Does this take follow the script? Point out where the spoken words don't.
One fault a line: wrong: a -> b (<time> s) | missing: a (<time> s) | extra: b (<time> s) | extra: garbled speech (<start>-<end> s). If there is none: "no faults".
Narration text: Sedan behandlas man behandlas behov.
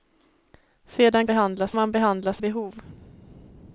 no faults